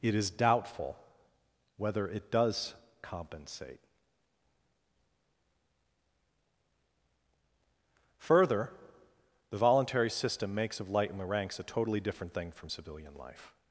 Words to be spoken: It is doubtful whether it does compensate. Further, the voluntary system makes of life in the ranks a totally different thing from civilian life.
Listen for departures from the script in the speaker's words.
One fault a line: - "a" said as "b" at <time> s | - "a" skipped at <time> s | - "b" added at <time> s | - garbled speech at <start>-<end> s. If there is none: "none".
- "life" said as "light" at 10.9 s